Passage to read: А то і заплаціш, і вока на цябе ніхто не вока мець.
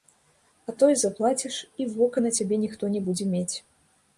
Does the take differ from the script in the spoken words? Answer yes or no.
yes